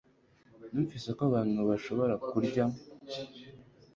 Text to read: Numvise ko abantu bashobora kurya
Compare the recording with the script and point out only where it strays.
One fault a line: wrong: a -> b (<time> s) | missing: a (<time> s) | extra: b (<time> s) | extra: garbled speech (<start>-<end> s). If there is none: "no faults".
no faults